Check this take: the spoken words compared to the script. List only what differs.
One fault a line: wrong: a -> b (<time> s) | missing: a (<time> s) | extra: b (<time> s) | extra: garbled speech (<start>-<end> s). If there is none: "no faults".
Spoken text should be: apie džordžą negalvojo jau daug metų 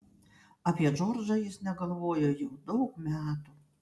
extra: jis (1.4 s)